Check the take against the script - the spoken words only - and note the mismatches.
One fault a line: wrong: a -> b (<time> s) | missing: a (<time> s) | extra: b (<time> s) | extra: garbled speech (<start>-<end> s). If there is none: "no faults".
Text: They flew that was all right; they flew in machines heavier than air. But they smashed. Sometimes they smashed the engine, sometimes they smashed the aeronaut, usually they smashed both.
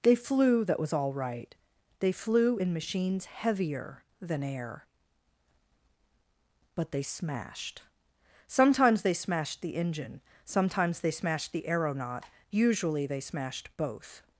no faults